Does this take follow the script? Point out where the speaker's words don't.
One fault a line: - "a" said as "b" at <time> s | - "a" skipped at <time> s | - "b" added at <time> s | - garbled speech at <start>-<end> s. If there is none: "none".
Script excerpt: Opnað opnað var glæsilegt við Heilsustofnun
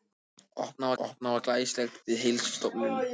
none